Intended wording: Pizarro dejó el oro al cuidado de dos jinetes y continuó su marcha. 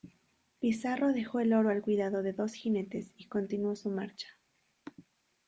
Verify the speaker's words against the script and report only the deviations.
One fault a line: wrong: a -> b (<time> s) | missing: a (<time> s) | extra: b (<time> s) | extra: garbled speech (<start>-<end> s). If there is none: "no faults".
no faults